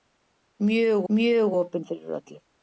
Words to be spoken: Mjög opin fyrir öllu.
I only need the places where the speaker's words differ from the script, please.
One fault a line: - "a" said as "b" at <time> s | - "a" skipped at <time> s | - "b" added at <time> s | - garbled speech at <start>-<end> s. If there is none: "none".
- "mjög" added at 1.1 s